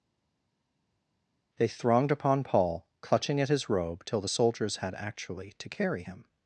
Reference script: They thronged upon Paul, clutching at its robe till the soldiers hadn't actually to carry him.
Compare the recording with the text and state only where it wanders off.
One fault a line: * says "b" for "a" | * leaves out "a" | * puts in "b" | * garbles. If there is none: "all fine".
* says "his" for "its"
* says "had" for "hadn't"